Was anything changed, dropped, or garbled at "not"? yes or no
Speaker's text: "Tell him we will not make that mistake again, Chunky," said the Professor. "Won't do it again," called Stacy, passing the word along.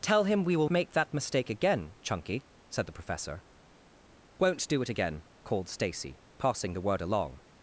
yes